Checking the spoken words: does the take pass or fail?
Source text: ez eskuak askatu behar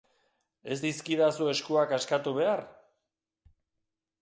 fail